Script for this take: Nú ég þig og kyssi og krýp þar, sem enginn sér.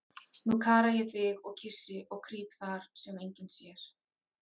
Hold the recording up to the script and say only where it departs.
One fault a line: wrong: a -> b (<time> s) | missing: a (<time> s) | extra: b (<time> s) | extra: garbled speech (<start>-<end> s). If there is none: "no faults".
extra: kara (0.6 s)